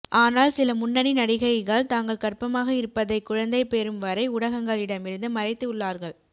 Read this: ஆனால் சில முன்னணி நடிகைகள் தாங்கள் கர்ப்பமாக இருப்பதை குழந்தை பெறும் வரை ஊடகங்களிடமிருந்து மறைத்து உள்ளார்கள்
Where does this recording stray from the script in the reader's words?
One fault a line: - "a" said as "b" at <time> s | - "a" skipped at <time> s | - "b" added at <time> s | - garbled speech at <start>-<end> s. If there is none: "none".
none